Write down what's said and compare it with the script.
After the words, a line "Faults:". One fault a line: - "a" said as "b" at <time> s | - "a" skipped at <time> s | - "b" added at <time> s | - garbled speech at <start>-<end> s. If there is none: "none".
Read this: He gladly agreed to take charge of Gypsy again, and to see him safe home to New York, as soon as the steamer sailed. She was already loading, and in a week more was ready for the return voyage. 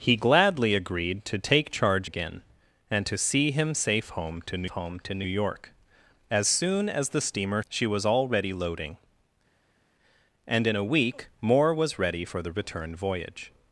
He gladly agreed to take charge again, and to see him safe home to New home to New York, as soon as the steamer. She was already loading, and in a week more was ready for the return voyage.
Faults:
- "of Gypsy" skipped at 2.1 s
- "home to New" added at 4.7 s
- "sailed" skipped at 7.6 s